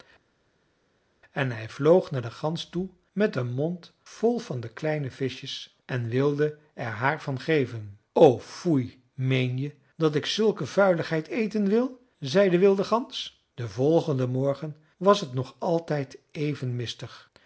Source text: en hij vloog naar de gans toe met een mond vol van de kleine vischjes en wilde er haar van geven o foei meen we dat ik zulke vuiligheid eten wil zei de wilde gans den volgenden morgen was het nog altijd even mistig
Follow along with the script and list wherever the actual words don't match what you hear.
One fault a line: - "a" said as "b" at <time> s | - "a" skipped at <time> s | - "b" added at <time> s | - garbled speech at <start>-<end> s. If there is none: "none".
- "we" said as "je" at 9.6 s